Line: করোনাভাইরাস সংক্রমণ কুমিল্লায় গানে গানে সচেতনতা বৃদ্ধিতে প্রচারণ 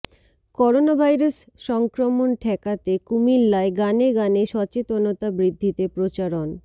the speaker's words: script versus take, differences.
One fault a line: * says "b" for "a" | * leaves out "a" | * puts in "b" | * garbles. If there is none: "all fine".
* puts in "ঠেকাতে"